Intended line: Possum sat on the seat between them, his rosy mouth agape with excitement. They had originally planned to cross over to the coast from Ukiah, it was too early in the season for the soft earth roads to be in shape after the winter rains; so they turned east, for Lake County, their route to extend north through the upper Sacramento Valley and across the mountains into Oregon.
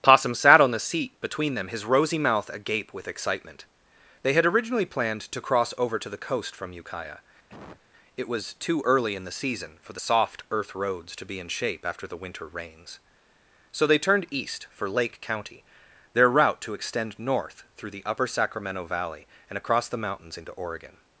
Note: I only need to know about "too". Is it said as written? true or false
true